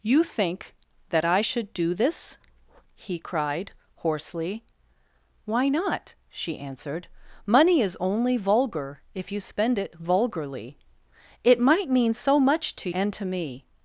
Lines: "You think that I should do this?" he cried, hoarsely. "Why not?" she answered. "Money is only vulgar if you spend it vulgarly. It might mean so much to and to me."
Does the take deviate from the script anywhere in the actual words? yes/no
no